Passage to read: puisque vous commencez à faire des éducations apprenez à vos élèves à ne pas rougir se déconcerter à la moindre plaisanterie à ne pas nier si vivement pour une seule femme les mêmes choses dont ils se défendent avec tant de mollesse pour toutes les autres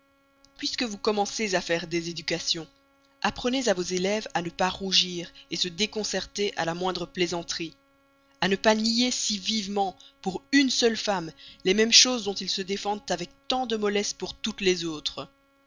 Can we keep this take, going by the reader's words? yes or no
yes